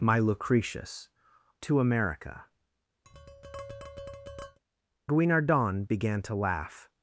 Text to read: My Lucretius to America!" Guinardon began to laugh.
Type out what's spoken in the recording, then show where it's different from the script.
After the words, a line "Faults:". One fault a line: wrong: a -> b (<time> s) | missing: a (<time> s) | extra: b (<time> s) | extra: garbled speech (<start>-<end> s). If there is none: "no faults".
My Lucretius to America!" Guinardon began to laugh.
Faults:
no faults